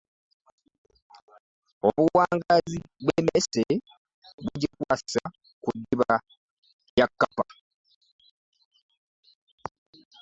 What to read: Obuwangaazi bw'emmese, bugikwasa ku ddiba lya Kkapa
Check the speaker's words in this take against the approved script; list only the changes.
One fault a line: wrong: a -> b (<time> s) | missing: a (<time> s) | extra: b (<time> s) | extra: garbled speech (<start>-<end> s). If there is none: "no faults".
no faults